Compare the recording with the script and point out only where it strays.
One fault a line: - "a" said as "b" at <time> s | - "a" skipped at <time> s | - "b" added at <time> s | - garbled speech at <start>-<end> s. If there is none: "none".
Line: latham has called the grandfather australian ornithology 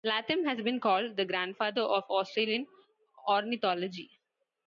- "been" added at 0.6 s
- "of" added at 1.8 s